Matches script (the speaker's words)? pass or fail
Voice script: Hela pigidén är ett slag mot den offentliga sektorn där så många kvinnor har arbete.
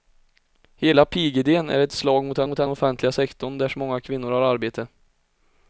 fail